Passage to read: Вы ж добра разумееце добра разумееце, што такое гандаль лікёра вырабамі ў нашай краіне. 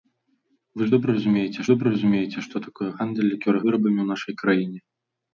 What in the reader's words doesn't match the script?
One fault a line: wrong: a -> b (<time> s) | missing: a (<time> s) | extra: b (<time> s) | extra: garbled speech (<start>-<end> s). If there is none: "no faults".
no faults